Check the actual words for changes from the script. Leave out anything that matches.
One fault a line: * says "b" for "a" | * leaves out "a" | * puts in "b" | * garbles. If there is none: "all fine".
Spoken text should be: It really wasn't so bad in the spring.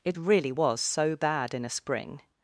* says "was" for "wasn't"
* says "a" for "the"